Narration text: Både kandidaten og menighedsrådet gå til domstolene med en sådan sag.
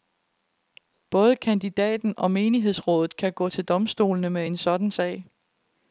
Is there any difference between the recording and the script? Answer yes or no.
yes